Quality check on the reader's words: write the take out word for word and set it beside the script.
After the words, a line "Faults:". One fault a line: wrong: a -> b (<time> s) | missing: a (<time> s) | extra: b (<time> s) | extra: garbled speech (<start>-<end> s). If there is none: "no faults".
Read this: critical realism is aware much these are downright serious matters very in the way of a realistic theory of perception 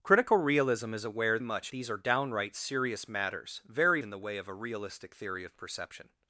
critical realism is aware much these are downright serious matters very in the way of a realistic theory of perception
Faults:
no faults